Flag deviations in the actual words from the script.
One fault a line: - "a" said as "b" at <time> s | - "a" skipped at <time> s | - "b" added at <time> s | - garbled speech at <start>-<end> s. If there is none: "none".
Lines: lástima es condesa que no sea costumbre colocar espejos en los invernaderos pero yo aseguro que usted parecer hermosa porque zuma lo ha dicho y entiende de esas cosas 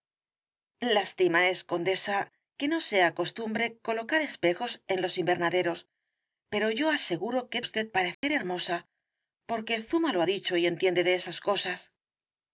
none